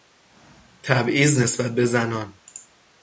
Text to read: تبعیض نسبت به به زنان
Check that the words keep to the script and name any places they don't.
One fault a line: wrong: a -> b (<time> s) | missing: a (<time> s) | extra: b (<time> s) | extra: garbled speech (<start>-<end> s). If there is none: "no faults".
missing: به (1.8 s)